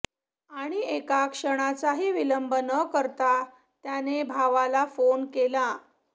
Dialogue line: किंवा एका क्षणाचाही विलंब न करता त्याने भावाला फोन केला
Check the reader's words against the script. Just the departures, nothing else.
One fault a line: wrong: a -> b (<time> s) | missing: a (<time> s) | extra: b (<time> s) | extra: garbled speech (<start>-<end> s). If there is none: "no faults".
wrong: किंवा -> आणि (0.5 s)